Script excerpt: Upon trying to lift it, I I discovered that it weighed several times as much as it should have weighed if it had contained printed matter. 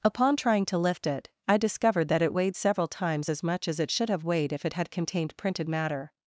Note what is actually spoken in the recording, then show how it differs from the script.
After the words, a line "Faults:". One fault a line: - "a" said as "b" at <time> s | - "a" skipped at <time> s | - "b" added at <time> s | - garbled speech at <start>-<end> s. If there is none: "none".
Upon trying to lift it, I discovered that it weighed several times as much as it should have weighed if it had contained printed matter.
Faults:
- "I" skipped at 1.6 s